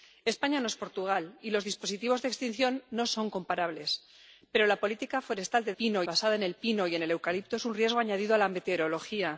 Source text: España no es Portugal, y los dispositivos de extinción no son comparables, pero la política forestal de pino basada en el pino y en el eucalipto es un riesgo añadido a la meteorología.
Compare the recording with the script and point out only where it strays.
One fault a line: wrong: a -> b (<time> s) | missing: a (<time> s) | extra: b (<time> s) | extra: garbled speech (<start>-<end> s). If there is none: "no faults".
no faults